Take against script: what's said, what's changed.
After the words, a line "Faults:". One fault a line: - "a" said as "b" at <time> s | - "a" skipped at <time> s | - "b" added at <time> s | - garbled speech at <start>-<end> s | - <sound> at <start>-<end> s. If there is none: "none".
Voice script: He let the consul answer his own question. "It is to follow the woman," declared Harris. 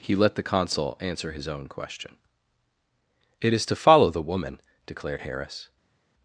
He let the consul answer his own question. "It is to follow the woman," declared Harris.
Faults:
none